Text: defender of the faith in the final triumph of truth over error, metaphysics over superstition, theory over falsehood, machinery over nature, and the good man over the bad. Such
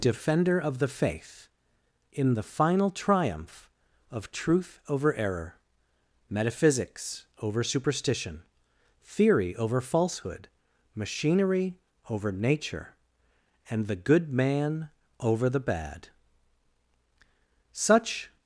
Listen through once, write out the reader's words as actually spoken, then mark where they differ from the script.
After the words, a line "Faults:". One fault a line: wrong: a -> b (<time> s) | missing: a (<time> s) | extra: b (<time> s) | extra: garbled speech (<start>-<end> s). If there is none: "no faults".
defender of the faith in the final triumph of truth over error, metaphysics over superstition, theory over falsehood, machinery over nature, and the good man over the bad. Such
Faults:
no faults